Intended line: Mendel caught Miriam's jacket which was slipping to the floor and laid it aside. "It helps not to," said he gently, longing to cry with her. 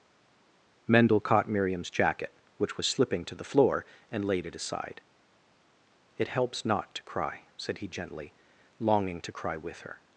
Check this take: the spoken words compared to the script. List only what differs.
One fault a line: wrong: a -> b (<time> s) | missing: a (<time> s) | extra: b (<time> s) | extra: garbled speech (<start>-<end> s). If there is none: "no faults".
extra: cry (7.0 s)